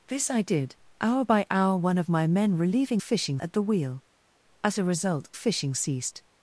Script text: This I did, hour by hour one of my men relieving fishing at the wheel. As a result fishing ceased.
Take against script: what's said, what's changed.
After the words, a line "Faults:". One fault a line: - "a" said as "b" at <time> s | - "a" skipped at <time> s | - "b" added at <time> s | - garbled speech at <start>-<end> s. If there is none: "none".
This I did, hour by hour one of my men relieving fishing at the wheel. As a result fishing ceased.
Faults:
none